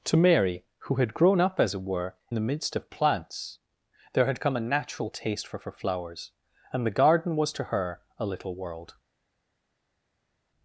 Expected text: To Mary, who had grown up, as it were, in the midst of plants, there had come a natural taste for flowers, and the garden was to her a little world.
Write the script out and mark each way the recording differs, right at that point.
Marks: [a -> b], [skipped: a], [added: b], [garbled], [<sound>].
To Mary, who had grown up, as it were, [skipped: in] the midst of plants, there had come a natural taste for [added: for] flowers, and the garden was to her a little world.